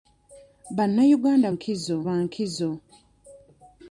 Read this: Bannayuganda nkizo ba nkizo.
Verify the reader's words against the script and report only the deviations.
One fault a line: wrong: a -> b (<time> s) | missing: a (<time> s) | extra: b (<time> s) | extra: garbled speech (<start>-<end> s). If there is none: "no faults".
no faults